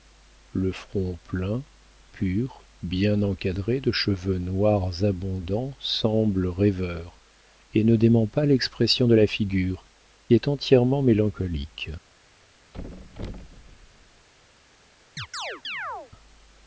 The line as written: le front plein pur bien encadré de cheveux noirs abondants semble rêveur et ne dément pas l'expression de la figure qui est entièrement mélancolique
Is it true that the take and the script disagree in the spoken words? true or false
true